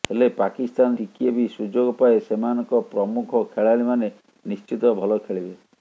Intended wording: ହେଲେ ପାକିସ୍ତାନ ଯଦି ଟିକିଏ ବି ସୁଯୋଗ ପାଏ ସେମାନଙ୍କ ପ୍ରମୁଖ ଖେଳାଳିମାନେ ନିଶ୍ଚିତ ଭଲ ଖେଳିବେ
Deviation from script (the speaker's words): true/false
true